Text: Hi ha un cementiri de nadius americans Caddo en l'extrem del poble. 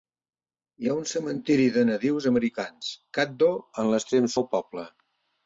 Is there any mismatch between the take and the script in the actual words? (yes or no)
no